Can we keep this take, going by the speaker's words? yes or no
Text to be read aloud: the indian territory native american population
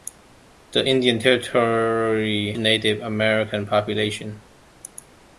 yes